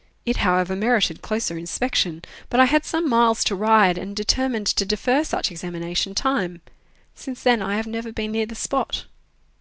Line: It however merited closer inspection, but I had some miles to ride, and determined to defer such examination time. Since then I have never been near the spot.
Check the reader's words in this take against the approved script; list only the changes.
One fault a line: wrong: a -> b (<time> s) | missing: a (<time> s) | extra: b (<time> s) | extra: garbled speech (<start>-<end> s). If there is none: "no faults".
no faults